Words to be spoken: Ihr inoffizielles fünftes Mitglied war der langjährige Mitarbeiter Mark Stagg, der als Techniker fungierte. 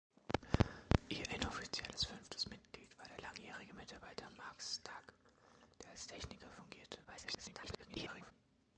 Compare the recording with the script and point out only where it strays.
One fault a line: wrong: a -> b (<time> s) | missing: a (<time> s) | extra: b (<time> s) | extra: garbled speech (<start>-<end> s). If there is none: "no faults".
extra: garbled speech (7.0-8.3 s)